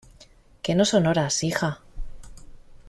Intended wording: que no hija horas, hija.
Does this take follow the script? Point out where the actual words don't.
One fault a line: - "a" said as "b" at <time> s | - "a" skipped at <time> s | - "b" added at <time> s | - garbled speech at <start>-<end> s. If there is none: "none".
- "hija" said as "son" at 0.8 s